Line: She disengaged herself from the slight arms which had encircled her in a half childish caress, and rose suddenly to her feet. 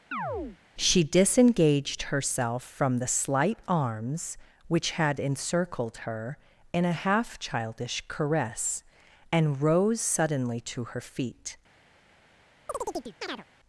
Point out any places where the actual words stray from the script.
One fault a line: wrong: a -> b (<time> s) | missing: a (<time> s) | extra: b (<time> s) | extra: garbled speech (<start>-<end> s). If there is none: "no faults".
no faults